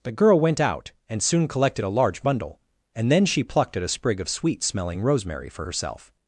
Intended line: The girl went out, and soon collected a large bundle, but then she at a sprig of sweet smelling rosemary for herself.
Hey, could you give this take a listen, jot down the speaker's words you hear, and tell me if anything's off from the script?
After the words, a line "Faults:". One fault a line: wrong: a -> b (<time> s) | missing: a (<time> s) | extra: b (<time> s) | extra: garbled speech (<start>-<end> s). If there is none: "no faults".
The girl went out, and soon collected a large bundle, and then she plucked at a sprig of sweet smelling rosemary for herself.
Faults:
wrong: but -> and (2.9 s)
extra: plucked (3.4 s)